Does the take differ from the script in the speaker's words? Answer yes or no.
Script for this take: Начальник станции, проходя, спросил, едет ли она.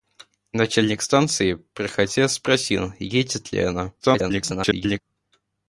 yes